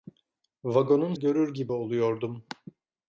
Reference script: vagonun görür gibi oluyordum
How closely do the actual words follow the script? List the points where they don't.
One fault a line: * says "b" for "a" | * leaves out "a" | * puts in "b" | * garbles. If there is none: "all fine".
all fine